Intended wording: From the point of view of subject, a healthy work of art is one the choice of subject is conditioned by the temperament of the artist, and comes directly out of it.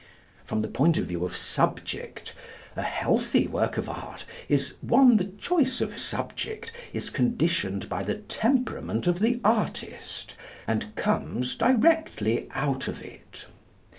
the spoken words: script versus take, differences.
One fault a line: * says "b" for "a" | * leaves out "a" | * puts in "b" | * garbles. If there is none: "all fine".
all fine